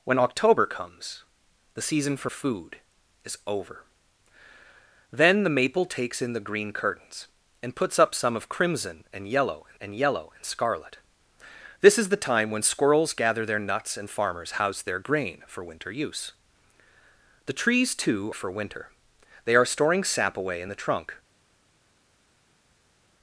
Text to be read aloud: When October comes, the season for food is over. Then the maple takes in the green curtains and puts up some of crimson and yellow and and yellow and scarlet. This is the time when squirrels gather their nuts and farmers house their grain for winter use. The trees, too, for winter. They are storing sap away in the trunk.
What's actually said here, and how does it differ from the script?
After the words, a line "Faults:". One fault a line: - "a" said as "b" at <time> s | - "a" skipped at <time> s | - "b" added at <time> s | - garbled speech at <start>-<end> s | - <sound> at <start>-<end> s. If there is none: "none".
When October comes, the season for food is over. Then the maple takes in the green curtains and puts up some of crimson and yellow and and yellow and scarlet. This is the time when squirrels gather their nuts and farmers house their grain for winter use. The trees, too, for winter. They are storing sap away in the trunk.
Faults:
none